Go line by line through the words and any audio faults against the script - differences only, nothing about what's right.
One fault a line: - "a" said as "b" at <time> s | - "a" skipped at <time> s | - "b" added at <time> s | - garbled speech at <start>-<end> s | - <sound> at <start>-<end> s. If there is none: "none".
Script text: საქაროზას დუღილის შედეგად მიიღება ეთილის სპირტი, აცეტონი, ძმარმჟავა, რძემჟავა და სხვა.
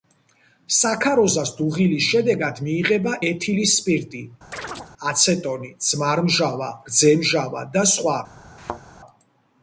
- chirp at 4.5-4.9 s
- thud at 8.6-8.8 s